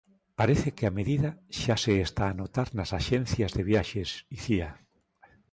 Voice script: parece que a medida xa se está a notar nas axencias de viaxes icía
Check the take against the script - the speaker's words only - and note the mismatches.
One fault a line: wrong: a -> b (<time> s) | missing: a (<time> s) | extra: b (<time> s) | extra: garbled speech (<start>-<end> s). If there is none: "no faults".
no faults